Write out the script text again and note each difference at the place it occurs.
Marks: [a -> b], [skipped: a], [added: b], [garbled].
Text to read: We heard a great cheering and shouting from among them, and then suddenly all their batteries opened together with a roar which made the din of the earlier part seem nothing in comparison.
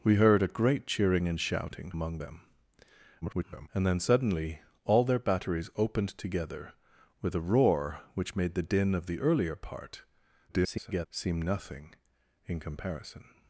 We heard a great cheering and shouting [skipped: from] among them, [garbled] and then suddenly all their batteries opened together with a roar which made the din of the earlier part [garbled] seem nothing in comparison.